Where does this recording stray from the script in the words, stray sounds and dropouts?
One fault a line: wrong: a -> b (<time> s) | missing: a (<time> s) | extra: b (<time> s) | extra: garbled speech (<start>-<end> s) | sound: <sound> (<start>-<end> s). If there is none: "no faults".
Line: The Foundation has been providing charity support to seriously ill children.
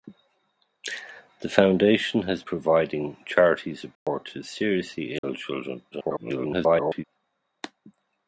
missing: been (2.4 s)
sound: dropout (4.0-4.1 s)
sound: dropout (5.2-5.2 s)
extra: garbled speech (5.9-7.0 s)